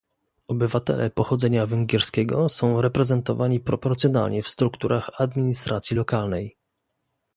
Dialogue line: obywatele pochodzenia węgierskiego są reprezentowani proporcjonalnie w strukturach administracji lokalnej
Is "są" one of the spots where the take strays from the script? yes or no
no